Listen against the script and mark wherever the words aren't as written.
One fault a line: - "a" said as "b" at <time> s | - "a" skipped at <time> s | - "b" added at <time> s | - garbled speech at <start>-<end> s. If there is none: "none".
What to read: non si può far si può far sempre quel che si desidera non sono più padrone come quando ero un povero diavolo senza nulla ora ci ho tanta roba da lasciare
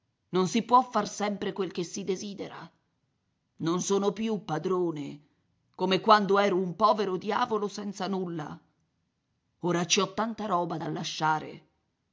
- "si può far" skipped at 1.1 s